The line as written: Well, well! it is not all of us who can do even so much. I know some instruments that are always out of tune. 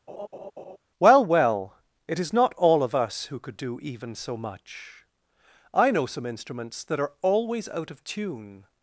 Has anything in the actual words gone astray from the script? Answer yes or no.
yes